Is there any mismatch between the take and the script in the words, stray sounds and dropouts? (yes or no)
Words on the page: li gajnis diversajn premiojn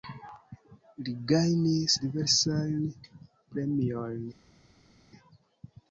no